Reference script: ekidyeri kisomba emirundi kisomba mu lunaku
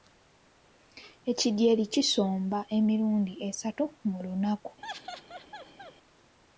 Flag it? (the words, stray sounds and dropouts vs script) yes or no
yes